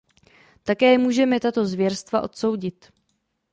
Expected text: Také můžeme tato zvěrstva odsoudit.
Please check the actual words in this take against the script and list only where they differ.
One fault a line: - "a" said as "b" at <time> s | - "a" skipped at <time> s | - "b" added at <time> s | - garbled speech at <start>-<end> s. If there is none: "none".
none